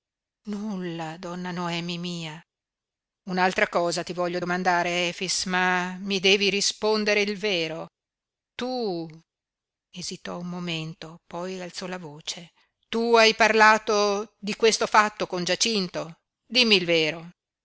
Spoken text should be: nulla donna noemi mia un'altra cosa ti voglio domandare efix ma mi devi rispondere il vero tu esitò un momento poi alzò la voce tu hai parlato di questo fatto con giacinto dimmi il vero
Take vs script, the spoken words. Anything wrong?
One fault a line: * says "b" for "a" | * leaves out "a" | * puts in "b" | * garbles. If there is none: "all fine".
all fine